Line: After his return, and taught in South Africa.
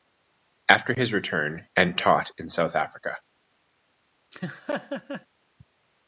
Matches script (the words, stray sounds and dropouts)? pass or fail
fail